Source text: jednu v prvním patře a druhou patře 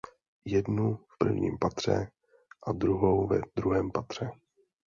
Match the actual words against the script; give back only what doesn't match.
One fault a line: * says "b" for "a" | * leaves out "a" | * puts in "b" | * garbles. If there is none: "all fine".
* puts in "ve druhém"